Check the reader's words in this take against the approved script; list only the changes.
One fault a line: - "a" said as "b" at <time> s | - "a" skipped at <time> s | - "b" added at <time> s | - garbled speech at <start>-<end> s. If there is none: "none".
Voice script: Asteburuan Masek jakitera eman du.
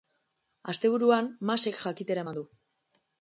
none